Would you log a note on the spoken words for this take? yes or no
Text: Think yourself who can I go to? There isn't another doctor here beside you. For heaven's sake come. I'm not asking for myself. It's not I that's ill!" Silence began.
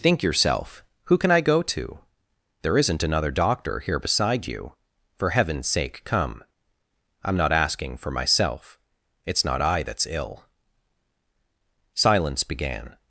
no